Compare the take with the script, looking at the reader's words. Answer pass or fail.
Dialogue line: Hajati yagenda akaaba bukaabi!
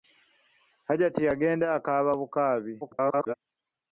fail